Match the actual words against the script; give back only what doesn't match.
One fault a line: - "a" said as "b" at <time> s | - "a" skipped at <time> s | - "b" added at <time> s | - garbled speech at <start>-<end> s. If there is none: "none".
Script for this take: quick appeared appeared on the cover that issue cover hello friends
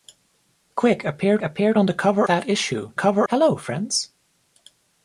none